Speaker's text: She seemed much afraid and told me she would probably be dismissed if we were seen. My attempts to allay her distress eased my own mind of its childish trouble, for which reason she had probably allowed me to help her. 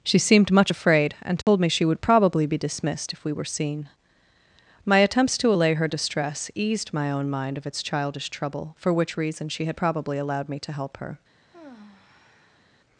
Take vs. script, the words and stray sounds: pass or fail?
fail